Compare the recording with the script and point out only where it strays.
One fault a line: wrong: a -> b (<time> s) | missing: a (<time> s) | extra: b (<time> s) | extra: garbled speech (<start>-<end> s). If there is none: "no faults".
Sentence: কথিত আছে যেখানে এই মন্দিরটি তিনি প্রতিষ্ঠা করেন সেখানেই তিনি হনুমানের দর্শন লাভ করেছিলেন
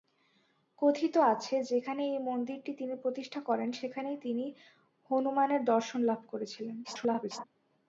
extra: garbled speech (6.8-7.4 s)